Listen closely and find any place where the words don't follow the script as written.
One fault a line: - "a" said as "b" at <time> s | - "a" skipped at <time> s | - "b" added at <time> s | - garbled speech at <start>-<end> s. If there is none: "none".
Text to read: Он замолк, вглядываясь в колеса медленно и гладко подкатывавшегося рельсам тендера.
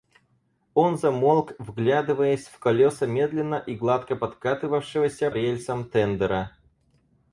none